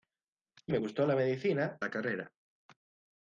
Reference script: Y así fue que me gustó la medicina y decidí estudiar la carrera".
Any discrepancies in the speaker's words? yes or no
yes